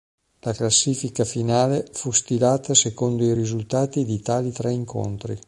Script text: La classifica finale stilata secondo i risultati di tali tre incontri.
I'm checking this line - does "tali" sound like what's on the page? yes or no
yes